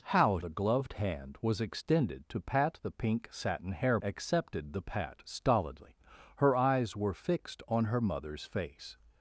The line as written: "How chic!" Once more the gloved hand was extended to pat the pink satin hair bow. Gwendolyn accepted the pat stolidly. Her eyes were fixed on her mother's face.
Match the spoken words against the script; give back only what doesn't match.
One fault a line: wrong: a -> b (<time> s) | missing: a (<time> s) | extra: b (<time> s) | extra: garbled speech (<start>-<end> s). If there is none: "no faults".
missing: chic Once more (0.4 s)
missing: bow Gwendolyn (4.0 s)